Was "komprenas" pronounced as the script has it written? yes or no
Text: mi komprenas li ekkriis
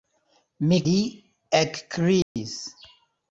no